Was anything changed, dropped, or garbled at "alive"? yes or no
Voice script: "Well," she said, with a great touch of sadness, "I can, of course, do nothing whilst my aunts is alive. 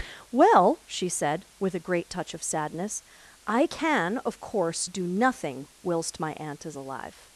no